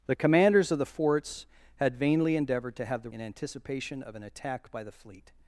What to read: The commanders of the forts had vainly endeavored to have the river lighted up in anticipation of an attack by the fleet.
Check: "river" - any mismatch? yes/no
yes